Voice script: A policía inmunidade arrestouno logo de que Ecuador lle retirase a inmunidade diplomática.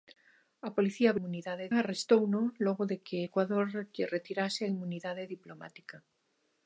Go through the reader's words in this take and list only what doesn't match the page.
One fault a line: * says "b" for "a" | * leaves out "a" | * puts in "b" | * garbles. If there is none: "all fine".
all fine